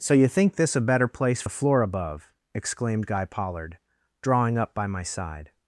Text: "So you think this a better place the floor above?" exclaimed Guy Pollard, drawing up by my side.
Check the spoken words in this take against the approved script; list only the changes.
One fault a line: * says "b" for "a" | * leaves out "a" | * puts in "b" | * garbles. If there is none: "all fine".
all fine